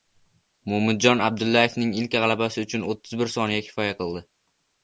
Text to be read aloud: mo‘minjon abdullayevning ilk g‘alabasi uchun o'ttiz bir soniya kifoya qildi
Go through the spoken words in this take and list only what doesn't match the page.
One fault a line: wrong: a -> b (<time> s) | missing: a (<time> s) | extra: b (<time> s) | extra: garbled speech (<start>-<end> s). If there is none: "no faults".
no faults